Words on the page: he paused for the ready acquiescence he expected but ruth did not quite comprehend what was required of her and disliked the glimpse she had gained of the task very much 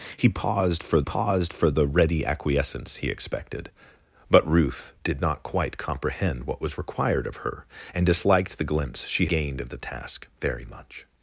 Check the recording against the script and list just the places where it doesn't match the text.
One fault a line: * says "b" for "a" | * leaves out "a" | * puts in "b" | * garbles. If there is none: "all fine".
* puts in "paused for"
* leaves out "had"